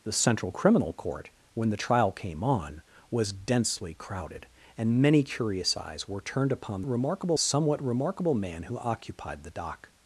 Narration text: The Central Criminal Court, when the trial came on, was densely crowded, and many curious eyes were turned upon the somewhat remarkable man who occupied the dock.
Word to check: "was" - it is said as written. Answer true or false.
true